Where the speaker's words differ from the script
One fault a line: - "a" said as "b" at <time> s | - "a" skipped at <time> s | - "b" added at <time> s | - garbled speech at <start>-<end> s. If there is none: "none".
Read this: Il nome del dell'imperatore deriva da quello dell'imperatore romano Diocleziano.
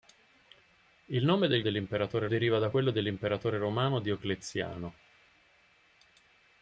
none